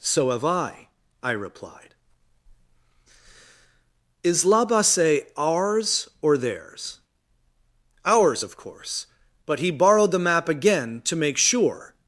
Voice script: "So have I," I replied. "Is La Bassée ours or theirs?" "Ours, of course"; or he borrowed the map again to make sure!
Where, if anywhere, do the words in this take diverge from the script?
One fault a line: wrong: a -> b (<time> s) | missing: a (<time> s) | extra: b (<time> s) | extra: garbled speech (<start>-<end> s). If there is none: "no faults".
wrong: or -> but (9.4 s)